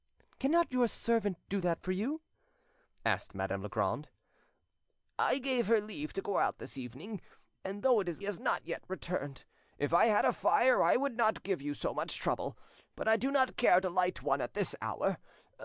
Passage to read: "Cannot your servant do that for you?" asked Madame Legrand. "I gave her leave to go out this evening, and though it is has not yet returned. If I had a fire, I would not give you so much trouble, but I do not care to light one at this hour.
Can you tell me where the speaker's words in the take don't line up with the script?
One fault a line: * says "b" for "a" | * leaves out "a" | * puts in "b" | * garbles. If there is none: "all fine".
all fine